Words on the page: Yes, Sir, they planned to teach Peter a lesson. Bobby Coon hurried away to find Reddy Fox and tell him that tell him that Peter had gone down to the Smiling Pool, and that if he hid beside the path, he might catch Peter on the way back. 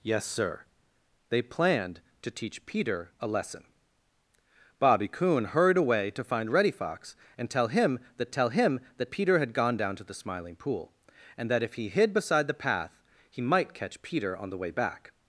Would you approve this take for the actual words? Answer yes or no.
yes